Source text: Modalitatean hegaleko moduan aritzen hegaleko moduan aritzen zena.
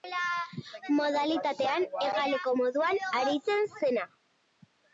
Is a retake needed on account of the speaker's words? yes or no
yes